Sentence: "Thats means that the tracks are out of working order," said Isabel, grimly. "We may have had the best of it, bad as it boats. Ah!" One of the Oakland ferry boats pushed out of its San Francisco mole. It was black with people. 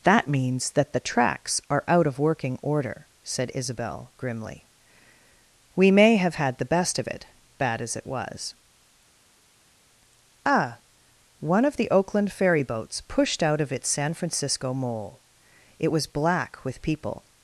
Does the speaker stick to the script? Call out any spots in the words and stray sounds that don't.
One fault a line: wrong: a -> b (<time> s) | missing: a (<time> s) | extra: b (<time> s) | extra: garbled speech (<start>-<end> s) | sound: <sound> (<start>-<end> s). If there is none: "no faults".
wrong: Thats -> That (0.0 s)
wrong: boats -> was (8.1 s)